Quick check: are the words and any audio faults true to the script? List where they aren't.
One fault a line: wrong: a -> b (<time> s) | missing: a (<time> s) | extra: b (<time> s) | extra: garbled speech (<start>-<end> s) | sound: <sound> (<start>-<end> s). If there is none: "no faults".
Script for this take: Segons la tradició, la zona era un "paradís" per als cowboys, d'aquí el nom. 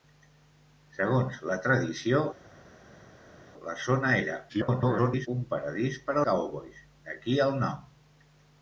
extra: garbled speech (4.5-5.3 s)
missing: als (6.2 s)